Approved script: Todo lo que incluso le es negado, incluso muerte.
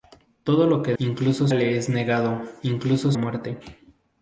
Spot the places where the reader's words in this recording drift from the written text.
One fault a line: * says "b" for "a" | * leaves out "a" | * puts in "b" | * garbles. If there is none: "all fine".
all fine